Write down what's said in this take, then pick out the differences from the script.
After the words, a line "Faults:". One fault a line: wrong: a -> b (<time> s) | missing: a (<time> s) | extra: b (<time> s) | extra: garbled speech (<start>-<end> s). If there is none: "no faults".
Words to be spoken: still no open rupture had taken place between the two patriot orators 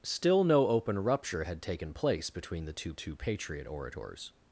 still no open rupture had taken place between the two two patriot orators
Faults:
extra: two (2.9 s)